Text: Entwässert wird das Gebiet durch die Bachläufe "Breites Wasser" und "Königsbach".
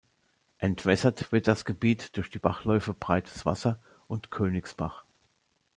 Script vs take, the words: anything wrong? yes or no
no